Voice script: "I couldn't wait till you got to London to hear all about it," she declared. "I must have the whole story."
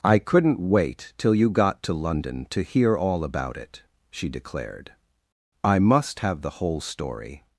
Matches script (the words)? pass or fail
pass